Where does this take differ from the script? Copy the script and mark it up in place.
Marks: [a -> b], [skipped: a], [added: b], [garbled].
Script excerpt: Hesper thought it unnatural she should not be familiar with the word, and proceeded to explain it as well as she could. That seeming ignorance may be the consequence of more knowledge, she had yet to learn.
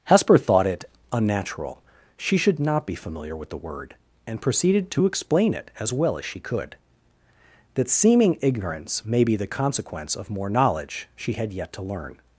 Hesper thought it unnatural she should not be familiar with the word, and proceeded to explain it as well as she could. That seeming ignorance may be the consequence of more knowledge, she had yet to learn.